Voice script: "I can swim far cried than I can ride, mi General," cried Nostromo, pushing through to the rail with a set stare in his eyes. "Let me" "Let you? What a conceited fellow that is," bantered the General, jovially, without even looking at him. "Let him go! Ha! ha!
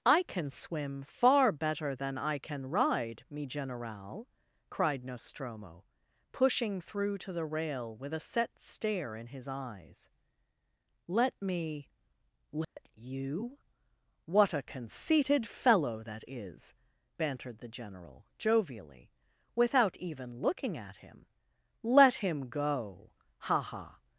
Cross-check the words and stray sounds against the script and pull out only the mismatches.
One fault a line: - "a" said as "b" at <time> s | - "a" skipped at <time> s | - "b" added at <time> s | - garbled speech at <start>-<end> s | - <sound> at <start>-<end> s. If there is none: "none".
- "cried" said as "better" at 1.5 s
- dropout at 12.6-12.8 s